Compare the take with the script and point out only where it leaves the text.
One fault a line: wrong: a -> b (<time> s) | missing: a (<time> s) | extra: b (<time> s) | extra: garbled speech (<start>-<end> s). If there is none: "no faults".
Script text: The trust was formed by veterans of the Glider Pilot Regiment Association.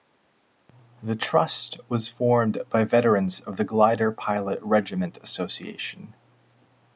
no faults